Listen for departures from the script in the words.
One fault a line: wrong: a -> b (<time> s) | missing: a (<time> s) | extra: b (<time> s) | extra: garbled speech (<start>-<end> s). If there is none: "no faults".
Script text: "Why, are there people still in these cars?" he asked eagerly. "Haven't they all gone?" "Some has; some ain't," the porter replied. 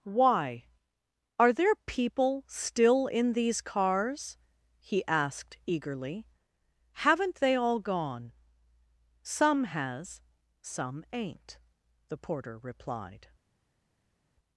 no faults